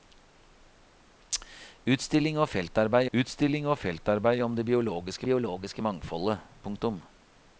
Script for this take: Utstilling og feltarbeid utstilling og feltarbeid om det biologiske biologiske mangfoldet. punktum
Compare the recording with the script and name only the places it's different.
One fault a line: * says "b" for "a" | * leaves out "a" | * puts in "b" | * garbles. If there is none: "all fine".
all fine